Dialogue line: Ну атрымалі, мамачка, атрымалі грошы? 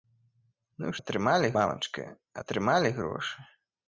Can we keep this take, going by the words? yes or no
yes